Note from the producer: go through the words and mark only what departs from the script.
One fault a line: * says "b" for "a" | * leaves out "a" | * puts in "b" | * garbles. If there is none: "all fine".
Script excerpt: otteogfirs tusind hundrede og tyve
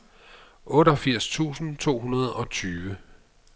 * puts in "to"